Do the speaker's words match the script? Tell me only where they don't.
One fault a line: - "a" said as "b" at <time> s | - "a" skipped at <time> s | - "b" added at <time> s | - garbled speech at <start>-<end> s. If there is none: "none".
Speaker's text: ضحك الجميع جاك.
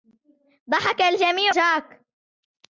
none